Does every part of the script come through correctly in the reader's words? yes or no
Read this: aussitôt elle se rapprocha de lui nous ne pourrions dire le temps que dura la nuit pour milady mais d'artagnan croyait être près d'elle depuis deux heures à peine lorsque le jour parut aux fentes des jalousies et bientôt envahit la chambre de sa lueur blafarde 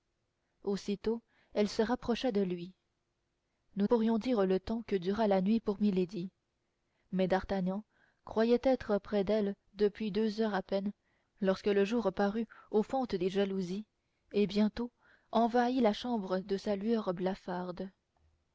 no